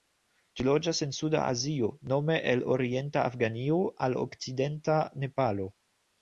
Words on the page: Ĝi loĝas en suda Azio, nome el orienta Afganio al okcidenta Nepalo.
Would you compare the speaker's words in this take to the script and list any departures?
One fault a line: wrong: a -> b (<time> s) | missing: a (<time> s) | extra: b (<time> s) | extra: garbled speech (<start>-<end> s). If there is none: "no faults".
no faults